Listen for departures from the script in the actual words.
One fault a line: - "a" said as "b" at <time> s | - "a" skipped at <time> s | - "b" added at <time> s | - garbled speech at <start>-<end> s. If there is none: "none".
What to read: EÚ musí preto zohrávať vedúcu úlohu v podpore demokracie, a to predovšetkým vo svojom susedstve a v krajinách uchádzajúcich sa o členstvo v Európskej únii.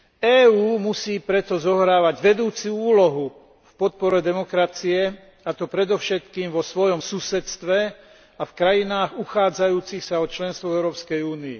none